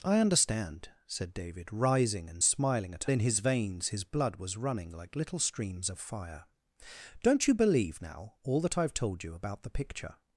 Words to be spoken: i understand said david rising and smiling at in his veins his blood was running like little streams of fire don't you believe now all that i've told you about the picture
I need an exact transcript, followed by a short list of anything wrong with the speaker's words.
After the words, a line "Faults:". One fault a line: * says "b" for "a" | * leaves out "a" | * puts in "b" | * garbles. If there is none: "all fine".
i understand said david rising and smiling at in his veins his blood was running like little streams of fire don't you believe now all that i've told you about the picture
Faults:
all fine